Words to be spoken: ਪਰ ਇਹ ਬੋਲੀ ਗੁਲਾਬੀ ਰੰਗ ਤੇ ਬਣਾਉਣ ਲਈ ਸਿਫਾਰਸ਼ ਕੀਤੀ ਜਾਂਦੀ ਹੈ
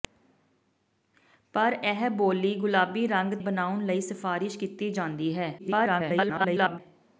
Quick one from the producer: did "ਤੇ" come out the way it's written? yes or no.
no